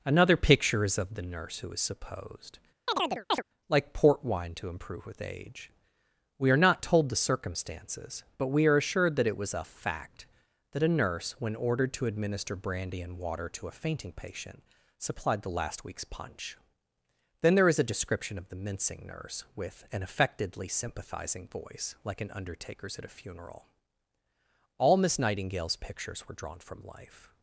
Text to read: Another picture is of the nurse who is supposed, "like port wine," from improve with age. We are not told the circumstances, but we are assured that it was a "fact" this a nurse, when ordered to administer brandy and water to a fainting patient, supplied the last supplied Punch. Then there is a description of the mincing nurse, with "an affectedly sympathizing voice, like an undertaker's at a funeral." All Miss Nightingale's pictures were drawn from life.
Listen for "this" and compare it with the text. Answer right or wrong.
wrong